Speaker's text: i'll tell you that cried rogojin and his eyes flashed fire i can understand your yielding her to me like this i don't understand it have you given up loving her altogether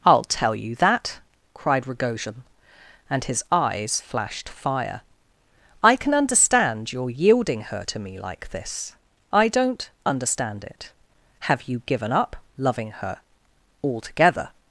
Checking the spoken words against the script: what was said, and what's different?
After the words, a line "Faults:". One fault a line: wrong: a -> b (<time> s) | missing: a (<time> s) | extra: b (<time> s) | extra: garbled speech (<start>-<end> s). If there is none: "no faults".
i'll tell you that cried rogojin and his eyes flashed fire i can understand your yielding her to me like this i don't understand it have you given up loving her altogether
Faults:
no faults